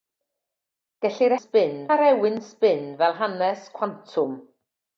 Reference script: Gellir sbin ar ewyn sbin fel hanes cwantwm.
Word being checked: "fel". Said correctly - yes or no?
yes